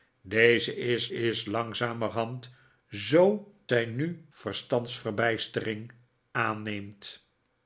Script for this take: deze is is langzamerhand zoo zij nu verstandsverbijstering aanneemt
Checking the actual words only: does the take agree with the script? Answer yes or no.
yes